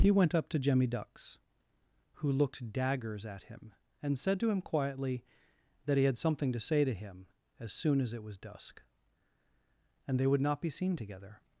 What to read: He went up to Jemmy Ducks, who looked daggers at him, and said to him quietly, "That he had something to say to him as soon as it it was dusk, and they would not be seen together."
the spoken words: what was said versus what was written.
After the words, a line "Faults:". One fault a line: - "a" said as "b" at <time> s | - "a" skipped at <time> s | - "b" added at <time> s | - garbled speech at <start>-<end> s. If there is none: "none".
He went up to Jemmy Ducks, who looked daggers at him, and said to him quietly, "That he had something to say to him as soon as it was dusk, and they would not be seen together."
Faults:
- "it" skipped at 8.2 s